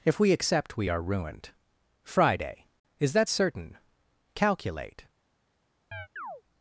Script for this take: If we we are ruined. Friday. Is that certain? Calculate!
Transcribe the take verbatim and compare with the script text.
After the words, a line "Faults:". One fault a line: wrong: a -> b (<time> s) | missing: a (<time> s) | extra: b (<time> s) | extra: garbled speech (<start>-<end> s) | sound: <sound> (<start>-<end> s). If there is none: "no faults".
If we accept we are ruined. Friday. Is that certain? Calculate!
Faults:
extra: accept (0.3 s)
sound: chirp (5.9-6.4 s)